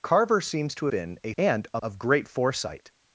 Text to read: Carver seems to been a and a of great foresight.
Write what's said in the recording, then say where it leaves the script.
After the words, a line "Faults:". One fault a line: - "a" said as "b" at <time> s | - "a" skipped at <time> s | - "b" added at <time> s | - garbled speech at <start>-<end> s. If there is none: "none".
Carver seems to been a and a of great foresight.
Faults:
none